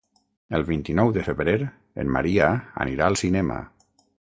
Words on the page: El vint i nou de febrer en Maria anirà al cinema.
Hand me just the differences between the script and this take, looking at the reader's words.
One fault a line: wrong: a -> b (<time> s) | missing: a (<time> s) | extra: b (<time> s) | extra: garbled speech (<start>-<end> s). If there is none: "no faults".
no faults